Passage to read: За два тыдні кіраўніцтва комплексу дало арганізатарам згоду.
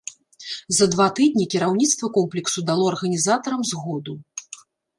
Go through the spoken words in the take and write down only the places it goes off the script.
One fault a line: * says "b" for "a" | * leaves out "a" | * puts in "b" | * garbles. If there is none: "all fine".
all fine